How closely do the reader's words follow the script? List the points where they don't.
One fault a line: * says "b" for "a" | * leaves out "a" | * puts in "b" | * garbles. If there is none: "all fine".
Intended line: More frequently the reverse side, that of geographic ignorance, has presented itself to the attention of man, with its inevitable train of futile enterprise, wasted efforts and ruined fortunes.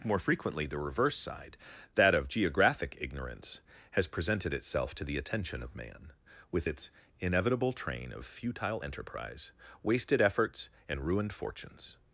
all fine